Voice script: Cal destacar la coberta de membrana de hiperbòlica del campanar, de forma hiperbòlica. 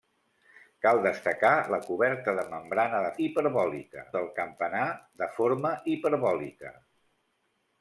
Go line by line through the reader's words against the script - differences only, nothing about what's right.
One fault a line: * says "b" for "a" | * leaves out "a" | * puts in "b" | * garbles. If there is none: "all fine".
all fine